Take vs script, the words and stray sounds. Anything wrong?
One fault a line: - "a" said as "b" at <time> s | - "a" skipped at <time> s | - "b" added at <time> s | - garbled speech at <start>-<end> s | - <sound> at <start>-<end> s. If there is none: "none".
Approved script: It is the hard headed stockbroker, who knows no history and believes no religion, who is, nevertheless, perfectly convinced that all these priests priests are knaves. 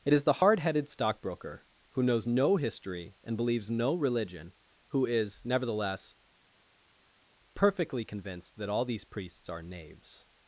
- "priests" skipped at 9.5 s